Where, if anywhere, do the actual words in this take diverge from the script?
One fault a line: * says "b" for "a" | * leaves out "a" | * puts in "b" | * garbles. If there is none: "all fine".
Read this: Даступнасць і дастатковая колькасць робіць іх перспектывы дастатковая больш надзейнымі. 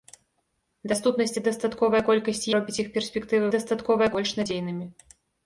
all fine